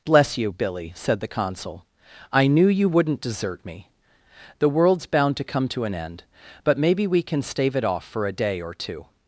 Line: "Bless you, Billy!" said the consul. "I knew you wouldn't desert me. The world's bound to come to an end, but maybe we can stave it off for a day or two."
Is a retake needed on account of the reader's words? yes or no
no